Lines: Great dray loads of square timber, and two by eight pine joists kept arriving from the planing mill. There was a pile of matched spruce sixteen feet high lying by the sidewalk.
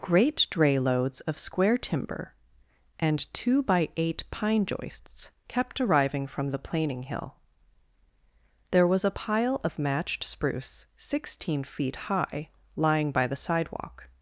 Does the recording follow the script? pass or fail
fail